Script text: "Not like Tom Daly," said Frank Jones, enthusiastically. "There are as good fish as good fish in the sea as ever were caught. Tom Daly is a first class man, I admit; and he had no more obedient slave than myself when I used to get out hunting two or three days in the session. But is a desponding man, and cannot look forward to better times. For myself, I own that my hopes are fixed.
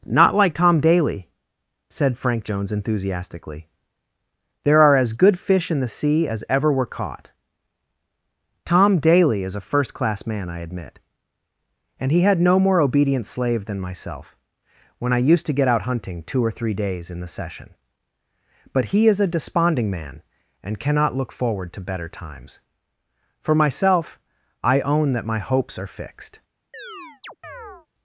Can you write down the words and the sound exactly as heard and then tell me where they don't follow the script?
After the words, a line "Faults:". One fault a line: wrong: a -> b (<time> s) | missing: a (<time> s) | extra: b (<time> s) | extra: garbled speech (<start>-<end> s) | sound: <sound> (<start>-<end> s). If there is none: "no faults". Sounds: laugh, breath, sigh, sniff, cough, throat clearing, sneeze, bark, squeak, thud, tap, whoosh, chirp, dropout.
"Not like Tom Daly," said Frank Jones, enthusiastically. "There are as good fish in the sea as ever were caught. Tom Daly is a first class man, I admit; and he had no more obedient slave than myself when I used to get out hunting two or three days in the session. But he is a desponding man, and cannot look forward to better times. For myself, I own that my hopes are fixed.
Faults:
missing: as good fish (5.7 s)
extra: he (18.9 s)
sound: chirp (26.7-27.9 s)